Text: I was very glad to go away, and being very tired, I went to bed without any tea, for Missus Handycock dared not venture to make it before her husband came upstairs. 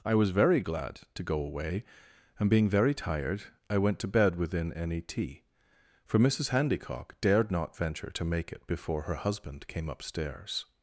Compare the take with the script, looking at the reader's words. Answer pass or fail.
fail